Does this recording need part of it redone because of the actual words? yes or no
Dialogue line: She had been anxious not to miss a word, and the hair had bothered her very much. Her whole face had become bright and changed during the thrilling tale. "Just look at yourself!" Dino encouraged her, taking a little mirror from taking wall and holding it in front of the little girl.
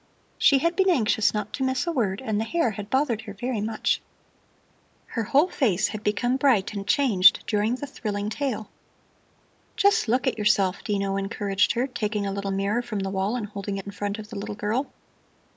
yes